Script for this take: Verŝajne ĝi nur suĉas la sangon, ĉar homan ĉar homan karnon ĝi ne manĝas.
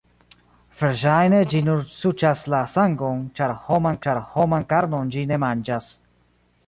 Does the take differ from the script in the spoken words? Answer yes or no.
no